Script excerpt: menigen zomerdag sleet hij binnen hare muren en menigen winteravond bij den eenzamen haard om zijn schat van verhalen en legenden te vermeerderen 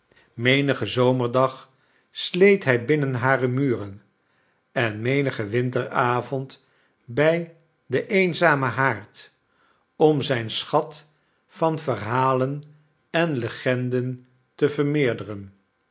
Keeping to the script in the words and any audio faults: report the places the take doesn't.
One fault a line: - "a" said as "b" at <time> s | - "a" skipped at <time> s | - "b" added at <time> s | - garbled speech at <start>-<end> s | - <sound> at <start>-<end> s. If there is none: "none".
none